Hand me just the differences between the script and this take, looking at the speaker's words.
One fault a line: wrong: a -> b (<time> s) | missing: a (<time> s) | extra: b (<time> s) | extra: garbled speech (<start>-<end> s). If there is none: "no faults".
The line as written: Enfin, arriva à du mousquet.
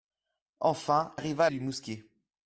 no faults